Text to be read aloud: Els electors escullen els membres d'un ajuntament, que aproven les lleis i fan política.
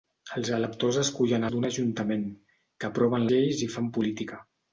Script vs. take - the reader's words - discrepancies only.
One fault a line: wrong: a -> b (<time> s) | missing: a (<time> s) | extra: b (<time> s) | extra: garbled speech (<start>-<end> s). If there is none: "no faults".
missing: els membres (1.4 s)
missing: les (3.3 s)